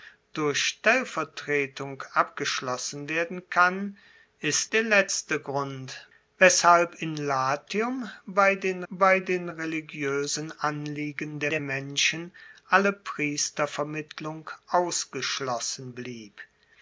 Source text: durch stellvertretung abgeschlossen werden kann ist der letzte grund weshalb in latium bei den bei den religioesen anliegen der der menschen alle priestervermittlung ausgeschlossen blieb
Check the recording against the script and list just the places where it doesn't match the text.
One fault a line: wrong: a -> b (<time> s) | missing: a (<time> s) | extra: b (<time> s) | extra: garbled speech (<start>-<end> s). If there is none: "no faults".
no faults